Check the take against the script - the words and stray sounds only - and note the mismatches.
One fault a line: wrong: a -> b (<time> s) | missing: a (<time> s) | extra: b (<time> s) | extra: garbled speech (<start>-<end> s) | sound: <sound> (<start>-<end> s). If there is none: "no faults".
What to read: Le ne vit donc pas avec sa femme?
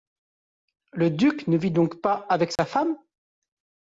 extra: duc (1.1 s)
sound: dropout (2.6-2.6 s)